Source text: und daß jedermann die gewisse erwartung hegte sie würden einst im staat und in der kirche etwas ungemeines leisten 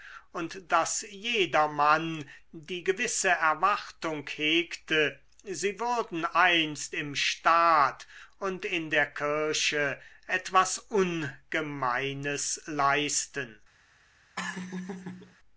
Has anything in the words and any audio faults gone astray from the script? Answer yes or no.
yes